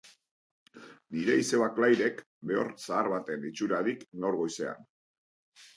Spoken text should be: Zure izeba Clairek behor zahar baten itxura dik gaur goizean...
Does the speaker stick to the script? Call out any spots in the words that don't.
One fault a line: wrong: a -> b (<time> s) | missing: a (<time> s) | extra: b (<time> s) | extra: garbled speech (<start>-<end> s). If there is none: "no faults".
wrong: Zure -> Nire (1.1 s)